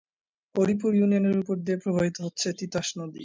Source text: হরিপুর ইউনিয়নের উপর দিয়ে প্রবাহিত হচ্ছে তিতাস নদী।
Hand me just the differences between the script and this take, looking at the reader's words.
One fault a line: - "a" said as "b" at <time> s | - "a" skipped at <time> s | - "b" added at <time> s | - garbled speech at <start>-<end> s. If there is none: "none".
none